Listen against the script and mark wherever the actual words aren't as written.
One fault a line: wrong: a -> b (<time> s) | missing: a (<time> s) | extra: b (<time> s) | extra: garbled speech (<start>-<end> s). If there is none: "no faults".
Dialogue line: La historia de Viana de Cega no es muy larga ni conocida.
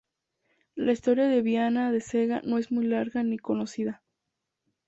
no faults